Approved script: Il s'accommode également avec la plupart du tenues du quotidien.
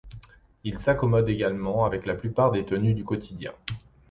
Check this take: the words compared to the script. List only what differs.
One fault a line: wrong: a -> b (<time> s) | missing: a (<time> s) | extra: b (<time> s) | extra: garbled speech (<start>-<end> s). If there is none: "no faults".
wrong: du -> des (2.5 s)